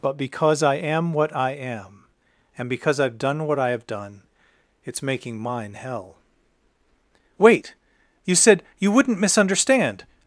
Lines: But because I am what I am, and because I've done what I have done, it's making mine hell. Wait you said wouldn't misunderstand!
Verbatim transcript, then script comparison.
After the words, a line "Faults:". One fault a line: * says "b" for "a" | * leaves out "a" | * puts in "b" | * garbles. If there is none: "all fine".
But because I am what I am, and because I've done what I have done, it's making mine hell. Wait you said you wouldn't misunderstand!
Faults:
* puts in "you"